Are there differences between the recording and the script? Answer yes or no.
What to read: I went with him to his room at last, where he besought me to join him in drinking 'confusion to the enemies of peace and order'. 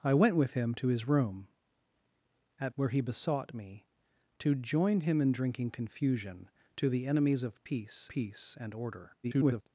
yes